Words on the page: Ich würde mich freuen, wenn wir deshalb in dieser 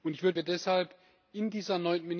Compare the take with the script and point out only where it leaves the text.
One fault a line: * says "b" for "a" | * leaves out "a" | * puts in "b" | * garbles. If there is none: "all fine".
* leaves out "mich freuen wenn"